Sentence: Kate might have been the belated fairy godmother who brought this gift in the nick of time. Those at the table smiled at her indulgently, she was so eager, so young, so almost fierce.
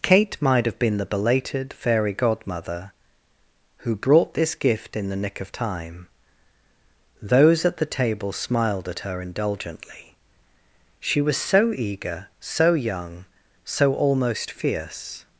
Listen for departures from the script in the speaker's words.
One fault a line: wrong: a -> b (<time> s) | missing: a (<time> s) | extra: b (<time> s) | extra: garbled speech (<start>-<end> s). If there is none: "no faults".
no faults